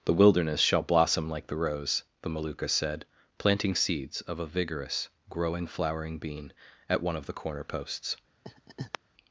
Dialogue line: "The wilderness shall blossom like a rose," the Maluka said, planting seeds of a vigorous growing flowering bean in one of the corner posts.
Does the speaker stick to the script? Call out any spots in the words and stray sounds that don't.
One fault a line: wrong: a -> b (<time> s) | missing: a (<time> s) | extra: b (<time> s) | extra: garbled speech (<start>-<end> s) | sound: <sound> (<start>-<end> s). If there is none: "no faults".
wrong: a -> the (1.4 s)
wrong: in -> at (6.9 s)
sound: laugh (8.4-9.0 s)